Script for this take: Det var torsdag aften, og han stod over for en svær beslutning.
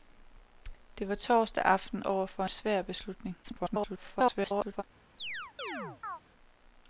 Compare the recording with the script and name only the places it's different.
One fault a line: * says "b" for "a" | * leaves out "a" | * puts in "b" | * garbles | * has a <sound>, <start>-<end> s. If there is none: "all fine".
* leaves out "og han stod"
* leaves out "en"
* garbles
* has a chirp, 5.2-6.2 s